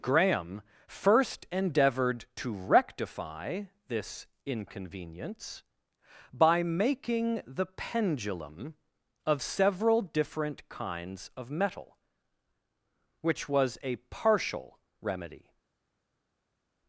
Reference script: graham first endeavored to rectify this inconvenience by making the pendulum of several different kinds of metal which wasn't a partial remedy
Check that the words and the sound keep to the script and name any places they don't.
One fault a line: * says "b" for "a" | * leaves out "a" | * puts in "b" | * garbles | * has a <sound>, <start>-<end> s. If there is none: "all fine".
* says "was" for "wasn't"